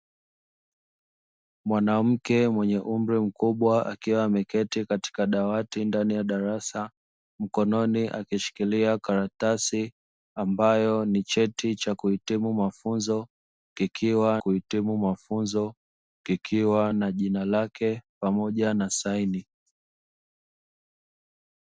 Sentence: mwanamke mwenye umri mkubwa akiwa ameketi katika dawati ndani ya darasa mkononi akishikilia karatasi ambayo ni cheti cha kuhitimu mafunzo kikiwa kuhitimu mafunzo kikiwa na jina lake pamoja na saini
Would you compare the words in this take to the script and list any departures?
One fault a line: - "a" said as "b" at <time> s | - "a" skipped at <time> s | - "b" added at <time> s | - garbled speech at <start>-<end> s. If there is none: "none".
none